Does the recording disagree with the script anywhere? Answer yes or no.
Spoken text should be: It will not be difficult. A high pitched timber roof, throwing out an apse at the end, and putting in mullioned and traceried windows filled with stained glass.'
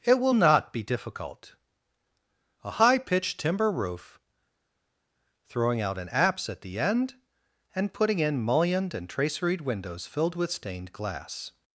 no